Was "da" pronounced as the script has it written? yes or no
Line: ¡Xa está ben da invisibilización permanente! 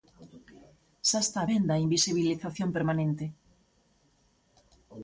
yes